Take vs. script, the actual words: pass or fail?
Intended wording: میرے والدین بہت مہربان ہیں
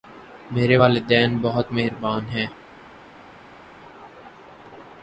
pass